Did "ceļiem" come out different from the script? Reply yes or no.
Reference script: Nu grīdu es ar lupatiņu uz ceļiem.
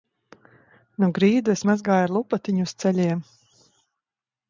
no